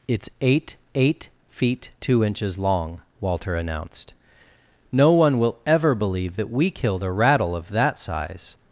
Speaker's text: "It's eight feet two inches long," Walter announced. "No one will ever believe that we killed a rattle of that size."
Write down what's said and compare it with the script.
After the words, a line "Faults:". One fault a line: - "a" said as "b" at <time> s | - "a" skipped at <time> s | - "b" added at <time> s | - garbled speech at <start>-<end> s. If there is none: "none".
"It's eight eight feet two inches long," Walter announced. "No one will ever believe that we killed a rattle of that size."
Faults:
- "eight" added at 0.9 s